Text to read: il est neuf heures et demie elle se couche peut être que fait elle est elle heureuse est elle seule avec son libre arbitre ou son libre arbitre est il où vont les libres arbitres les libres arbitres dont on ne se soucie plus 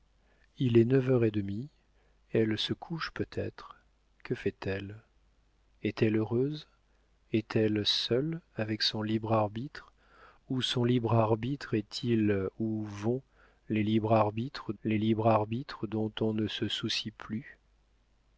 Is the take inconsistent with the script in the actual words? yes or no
no